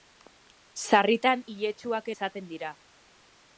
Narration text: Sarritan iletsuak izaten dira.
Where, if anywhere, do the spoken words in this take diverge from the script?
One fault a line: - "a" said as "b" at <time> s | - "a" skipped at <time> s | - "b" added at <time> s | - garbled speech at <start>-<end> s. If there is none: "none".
none